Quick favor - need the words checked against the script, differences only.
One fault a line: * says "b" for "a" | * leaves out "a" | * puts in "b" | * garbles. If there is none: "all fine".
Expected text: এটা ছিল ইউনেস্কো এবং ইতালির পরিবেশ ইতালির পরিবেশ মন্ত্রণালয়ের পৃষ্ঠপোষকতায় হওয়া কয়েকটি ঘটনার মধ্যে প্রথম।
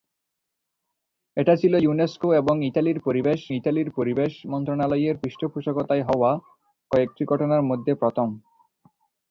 all fine